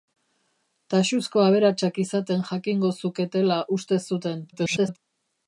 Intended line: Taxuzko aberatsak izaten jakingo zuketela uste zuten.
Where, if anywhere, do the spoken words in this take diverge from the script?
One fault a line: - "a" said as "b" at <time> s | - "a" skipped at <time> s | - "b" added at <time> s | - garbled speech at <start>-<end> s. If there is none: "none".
- garbled speech at 4.5-5.0 s